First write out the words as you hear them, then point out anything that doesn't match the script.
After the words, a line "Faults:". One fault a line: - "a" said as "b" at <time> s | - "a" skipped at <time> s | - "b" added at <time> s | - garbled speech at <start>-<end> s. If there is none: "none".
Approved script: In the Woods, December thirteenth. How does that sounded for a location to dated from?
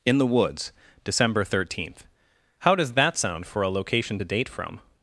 In the Woods, December thirteenth. How does that sound for a location to date from?
Faults:
- "sounded" said as "sound" at 3.2 s
- "dated" said as "date" at 4.2 s